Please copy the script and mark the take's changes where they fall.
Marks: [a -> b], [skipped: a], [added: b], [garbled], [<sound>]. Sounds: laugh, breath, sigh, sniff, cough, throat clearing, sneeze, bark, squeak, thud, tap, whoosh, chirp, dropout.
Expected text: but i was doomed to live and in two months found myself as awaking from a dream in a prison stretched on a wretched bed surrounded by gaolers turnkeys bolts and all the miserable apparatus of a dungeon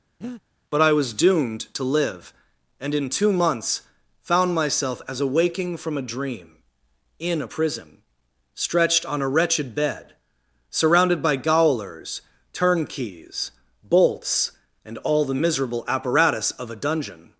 [breath] but i was doomed to live and in two months found myself as awaking from a dream in a prison stretched on a wretched bed surrounded by gaolers turnkeys bolts and all the miserable apparatus of a dungeon